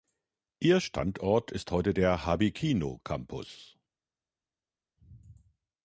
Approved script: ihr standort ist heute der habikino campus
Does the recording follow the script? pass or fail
pass